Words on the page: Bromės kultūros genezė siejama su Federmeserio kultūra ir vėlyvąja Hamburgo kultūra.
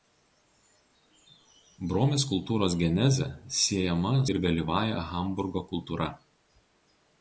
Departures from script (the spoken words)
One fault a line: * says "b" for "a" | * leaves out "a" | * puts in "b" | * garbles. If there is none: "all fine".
* leaves out "su Federmeserio kultūra"